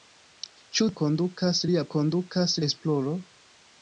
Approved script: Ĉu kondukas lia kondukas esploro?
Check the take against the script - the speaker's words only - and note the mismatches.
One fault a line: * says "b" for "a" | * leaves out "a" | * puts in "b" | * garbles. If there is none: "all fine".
all fine